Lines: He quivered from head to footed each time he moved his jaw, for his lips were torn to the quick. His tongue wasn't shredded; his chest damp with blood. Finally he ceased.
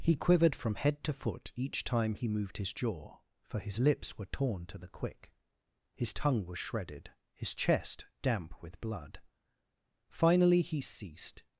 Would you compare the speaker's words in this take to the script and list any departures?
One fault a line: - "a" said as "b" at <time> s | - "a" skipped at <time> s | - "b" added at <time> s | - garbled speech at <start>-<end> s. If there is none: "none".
- "footed" said as "foot" at 1.1 s
- "wasn't" said as "was" at 6.5 s